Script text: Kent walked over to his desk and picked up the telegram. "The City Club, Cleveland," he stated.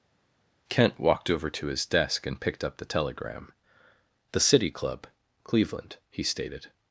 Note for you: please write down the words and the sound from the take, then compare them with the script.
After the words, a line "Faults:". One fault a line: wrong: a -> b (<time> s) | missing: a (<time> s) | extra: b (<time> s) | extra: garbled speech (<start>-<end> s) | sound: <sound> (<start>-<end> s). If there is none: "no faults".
Kent walked over to his desk and picked up the telegram. "The City Club, Cleveland," he stated.
Faults:
no faults